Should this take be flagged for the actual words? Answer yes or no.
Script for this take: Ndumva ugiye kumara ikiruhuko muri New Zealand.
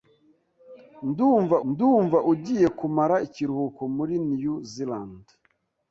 yes